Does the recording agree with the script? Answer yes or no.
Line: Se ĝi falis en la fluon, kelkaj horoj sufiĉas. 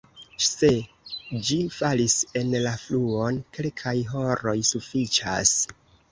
yes